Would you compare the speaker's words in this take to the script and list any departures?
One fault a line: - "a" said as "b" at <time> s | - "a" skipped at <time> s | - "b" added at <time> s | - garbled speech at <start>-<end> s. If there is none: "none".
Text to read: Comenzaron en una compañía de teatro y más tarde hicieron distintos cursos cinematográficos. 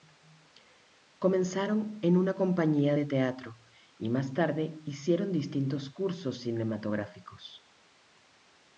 none